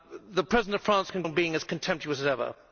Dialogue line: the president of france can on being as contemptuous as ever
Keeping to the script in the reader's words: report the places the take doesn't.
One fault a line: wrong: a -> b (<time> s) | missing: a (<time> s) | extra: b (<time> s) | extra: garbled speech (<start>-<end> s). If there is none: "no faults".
no faults